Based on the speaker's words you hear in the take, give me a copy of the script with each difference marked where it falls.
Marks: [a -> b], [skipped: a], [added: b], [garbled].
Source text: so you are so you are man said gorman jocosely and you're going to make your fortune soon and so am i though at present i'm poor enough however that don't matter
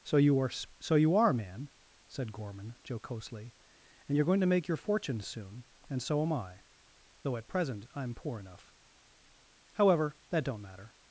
so you are so you are man said gorman jocosely and you're going to make your fortune soon and so am i though at present i'm poor enough however that don't matter